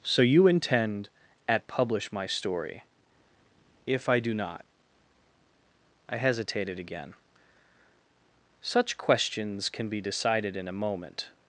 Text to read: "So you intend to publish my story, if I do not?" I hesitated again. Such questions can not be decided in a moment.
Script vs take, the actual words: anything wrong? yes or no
yes